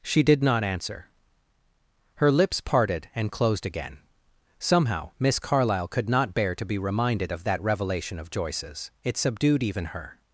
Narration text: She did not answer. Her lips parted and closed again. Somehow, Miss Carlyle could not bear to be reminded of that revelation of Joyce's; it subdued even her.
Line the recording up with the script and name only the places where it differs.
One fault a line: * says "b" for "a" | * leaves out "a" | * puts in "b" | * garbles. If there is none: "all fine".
all fine